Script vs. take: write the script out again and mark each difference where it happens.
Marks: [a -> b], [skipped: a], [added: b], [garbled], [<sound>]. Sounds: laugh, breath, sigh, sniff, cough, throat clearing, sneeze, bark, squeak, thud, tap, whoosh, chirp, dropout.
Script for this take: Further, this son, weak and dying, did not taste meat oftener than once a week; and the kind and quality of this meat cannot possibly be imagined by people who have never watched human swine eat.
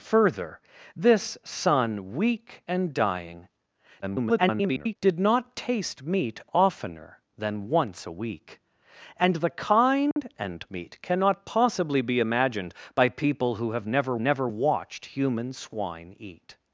Further, this son, weak and dying, [garbled] did not taste meat oftener than once a week; and the kind [dropout] and [skipped: quality of this] meat cannot possibly be imagined by people who have never [added: never] watched human swine eat.